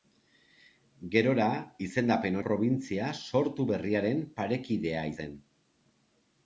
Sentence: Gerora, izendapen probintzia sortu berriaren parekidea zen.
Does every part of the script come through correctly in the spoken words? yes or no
yes